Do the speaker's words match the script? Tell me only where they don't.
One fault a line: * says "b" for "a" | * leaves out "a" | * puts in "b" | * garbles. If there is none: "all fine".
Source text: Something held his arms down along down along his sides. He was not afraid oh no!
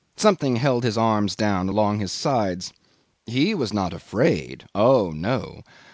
* leaves out "down along"